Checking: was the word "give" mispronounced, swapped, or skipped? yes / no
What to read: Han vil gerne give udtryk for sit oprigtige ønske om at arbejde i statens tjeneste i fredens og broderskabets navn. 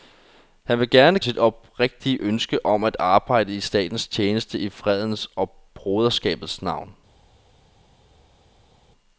yes